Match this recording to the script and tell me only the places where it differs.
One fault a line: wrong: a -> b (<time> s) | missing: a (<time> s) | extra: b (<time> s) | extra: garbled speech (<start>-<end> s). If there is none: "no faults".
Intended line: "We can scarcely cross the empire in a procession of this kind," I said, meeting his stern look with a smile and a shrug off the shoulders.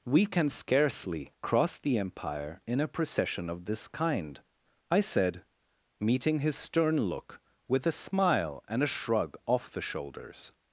no faults